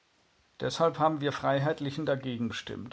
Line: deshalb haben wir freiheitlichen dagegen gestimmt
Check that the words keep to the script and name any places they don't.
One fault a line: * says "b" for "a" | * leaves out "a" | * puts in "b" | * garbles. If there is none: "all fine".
all fine